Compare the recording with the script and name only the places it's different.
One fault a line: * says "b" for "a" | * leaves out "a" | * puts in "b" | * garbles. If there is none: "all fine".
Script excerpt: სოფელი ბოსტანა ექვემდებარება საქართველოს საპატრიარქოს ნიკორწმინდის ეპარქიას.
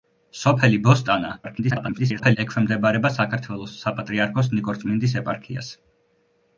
* garbles